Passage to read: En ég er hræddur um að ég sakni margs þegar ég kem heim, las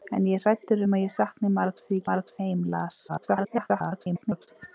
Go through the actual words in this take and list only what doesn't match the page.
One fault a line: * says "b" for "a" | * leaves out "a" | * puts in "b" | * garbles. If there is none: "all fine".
* says "margs" for "kem"
* garbles